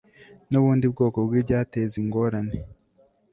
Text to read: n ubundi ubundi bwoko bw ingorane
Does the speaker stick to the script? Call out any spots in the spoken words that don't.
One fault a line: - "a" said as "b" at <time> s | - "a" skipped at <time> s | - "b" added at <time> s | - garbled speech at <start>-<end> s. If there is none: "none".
- "ubundi" skipped at 0.8 s
- "ibyateza" added at 1.4 s